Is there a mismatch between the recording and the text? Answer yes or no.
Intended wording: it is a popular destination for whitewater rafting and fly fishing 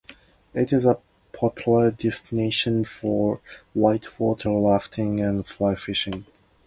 no